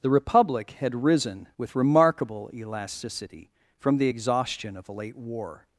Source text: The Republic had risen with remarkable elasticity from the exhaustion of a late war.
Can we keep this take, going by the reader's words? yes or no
yes